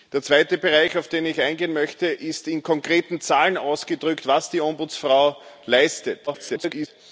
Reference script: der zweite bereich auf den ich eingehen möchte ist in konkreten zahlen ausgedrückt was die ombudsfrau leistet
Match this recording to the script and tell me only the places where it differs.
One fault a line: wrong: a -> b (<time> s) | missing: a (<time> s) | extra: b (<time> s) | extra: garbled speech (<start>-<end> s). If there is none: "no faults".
extra: garbled speech (6.3-6.9 s)